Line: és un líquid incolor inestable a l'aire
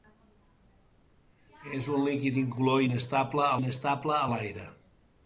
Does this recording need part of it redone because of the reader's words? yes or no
yes